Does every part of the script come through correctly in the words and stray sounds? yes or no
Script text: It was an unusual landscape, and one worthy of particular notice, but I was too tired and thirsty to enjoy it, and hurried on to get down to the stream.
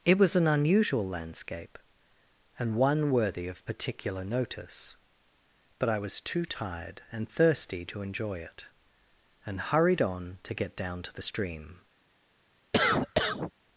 no